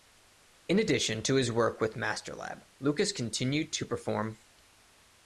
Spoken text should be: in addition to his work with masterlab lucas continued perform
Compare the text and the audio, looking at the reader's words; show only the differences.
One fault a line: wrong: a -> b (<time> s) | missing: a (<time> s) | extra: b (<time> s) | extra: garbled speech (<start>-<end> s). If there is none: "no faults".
extra: to (3.7 s)